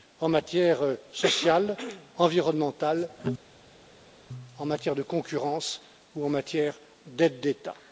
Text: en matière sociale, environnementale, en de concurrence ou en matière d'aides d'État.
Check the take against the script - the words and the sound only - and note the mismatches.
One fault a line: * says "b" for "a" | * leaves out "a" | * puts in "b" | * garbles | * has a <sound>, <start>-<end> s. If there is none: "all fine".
* puts in "matière"